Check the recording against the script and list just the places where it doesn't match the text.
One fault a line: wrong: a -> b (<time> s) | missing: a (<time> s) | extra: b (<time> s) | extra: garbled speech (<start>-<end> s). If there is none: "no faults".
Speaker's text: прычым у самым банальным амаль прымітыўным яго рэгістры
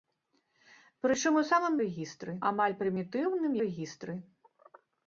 wrong: банальным -> рэгістры (1.8 s)
missing: яго (3.6 s)